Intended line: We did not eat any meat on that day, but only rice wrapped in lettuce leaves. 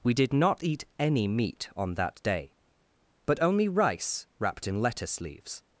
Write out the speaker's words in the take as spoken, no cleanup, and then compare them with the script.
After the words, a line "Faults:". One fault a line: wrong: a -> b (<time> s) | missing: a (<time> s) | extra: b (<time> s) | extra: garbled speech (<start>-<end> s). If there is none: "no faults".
We did not eat any meat on that day, but only rice wrapped in lettuce leaves.
Faults:
no faults